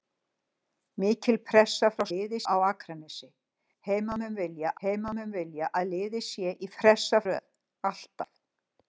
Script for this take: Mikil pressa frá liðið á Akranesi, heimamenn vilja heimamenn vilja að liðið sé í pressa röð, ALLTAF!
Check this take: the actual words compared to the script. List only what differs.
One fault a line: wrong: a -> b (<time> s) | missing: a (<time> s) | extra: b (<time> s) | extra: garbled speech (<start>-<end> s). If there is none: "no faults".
no faults